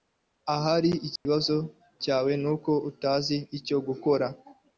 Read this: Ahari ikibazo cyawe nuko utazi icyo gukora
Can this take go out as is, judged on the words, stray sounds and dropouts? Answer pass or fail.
fail